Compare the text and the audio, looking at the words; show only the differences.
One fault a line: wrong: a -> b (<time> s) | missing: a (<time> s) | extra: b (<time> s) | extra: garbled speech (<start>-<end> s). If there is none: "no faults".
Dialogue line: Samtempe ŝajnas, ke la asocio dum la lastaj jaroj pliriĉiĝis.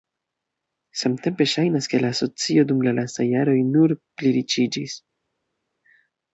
extra: nur (3.7 s)